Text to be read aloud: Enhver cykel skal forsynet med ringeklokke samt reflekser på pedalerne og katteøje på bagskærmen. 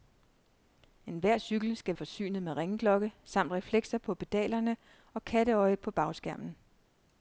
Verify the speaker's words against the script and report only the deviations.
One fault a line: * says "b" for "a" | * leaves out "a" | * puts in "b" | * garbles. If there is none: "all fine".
all fine